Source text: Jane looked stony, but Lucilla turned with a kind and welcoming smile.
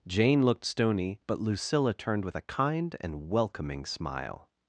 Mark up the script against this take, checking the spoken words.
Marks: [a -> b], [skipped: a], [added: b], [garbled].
Jane looked stony, but Lucilla turned with a kind and welcoming smile.